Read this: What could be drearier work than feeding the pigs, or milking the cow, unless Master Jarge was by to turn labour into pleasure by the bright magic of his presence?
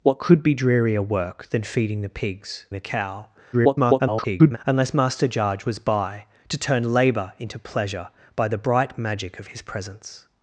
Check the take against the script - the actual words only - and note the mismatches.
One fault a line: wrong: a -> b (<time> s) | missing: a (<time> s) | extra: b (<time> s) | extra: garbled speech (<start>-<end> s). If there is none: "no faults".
missing: or milking (2.6 s)
extra: garbled speech (3.5-4.6 s)